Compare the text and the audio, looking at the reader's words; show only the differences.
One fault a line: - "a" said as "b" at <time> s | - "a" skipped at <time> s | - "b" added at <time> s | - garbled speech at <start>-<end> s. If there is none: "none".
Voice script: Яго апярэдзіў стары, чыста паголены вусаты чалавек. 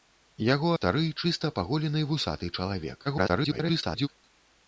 - "апярэдзіў" skipped at 0.7 s
- garbled speech at 3.1-4.1 s